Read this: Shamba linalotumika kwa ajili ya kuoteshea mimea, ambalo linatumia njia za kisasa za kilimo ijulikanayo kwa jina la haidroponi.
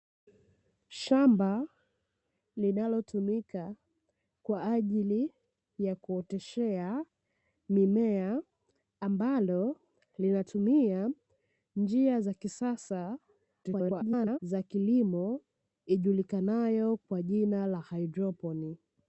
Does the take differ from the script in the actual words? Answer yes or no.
yes